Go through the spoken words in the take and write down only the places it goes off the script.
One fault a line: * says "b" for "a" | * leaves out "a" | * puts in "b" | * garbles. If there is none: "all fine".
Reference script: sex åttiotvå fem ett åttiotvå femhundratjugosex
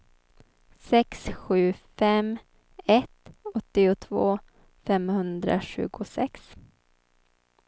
* says "sju" for "åttiotvå"